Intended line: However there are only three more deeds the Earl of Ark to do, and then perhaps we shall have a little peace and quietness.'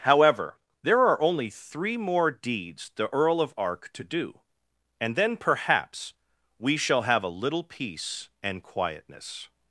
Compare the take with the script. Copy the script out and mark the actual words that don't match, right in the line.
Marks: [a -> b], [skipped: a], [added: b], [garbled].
However there are only three more deeds the Earl of Ark to do, and then perhaps we shall have a little peace and quietness.'